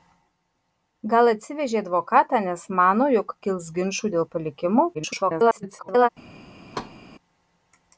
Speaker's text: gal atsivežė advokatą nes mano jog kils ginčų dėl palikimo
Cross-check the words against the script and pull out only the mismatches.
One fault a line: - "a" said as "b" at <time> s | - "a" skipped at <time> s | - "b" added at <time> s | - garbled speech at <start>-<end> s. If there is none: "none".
- garbled speech at 4.9-6.1 s